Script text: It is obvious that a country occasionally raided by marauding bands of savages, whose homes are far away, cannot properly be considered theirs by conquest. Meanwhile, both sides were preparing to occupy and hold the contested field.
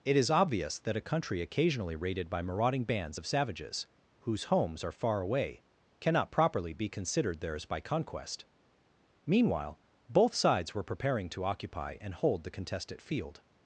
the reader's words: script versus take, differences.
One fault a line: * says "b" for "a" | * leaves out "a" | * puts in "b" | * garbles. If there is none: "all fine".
all fine